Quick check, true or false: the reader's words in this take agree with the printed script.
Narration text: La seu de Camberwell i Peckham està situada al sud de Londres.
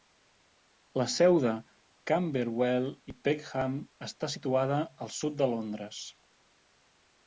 true